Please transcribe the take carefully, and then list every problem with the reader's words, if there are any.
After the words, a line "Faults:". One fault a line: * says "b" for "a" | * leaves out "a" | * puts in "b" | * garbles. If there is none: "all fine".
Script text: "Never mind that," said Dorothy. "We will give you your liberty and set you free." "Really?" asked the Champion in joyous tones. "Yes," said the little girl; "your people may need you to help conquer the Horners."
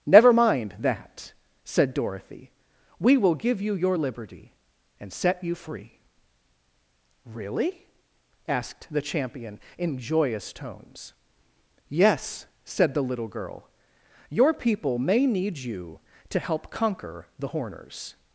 "Never mind that," said Dorothy. "We will give you your liberty and set you free." "Really?" asked the Champion in joyous tones. "Yes," said the little girl; "your people may need you to help conquer the Horners."
Faults:
all fine